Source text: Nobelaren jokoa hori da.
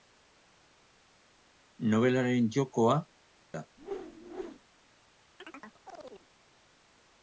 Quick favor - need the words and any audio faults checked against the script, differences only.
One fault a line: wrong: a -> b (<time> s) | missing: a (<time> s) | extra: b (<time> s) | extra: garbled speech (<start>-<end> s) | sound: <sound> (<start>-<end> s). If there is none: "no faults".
missing: hori (3.0 s)
sound: whoosh (3.8-4.6 s)
sound: chirp (5.4-6.3 s)